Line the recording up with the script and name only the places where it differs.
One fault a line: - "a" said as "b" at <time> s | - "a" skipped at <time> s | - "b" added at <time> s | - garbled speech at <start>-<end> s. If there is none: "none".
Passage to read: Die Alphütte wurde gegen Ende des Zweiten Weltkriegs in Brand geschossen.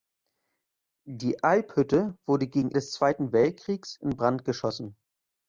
- "Ende" skipped at 2.7 s